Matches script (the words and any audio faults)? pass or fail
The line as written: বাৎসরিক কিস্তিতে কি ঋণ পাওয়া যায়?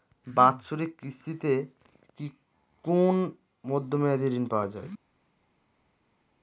fail